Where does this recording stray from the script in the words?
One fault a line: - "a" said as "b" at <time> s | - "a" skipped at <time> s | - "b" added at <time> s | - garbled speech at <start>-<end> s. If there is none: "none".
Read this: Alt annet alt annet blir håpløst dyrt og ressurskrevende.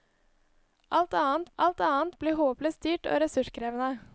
none